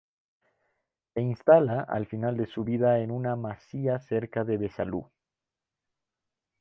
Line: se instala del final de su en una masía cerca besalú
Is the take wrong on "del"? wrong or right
wrong